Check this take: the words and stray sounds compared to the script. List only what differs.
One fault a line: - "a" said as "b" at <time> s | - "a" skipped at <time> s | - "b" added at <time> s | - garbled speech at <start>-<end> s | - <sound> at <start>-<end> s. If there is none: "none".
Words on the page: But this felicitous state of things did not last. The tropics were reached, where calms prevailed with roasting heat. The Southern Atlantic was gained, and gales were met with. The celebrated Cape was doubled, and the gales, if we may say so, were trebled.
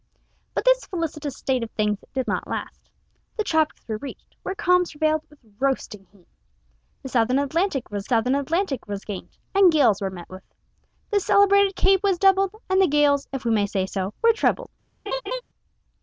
- "Southern Atlantic was" added at 8.1 s
- laugh at 15.1-15.4 s